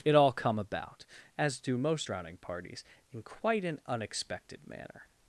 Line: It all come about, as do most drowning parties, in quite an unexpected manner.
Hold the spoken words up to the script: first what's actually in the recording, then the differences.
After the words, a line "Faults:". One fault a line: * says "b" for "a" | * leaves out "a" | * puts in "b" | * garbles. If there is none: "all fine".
It all come about, as do most drowning parties, in quite an unexpected manner.
Faults:
all fine